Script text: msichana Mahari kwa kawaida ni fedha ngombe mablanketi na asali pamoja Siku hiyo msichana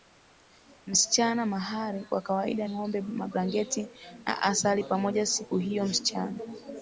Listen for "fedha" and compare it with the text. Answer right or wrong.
wrong